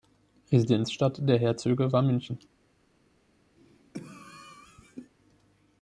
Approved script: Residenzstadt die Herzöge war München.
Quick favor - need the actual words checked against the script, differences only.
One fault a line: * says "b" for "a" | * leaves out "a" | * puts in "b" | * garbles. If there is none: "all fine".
* says "der" for "die"